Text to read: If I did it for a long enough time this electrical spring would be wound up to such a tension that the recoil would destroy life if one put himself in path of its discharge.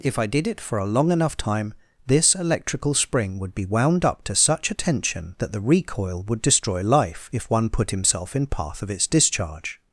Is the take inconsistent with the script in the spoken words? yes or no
no